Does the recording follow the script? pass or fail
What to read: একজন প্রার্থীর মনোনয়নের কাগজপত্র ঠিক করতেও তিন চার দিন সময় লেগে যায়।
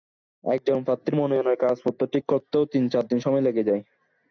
pass